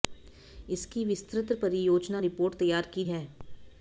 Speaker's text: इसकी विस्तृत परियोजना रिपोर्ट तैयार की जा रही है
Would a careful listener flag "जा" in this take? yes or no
yes